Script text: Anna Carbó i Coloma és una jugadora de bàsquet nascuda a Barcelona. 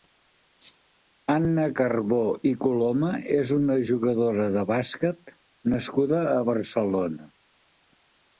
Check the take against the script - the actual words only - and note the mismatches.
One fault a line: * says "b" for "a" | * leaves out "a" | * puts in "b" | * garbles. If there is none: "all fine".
all fine